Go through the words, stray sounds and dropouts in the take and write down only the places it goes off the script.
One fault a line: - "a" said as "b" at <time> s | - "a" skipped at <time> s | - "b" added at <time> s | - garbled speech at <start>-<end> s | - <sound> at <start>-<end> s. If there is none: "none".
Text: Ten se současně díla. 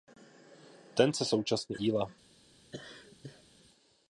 - laugh at 2.7-3.5 s